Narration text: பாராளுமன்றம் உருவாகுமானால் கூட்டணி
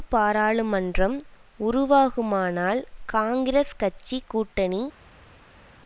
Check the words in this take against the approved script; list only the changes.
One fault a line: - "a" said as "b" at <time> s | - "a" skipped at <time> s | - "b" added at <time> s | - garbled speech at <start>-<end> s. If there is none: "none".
- "காங்கிரஸ் கட்சி" added at 3.1 s